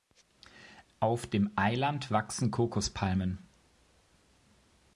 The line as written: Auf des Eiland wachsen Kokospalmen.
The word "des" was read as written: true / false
false